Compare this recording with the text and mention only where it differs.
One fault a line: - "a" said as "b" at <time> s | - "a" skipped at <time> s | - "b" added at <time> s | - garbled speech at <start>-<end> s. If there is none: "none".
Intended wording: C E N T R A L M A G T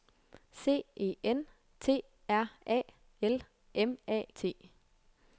- "G" skipped at 4.2 s